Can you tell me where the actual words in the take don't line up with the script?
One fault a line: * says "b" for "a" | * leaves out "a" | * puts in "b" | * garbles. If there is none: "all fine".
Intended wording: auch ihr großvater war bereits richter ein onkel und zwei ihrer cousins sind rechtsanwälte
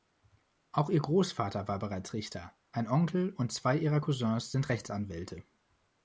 all fine